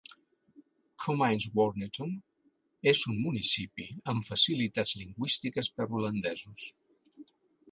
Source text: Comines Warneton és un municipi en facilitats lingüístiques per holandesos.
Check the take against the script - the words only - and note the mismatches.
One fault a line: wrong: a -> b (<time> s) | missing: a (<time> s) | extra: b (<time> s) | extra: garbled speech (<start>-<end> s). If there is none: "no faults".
wrong: en -> amb (4.1 s)